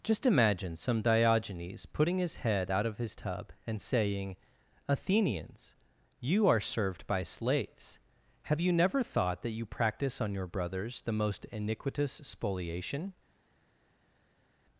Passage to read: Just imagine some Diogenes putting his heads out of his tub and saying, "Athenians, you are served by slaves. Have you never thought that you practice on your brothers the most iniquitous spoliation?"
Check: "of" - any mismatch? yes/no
no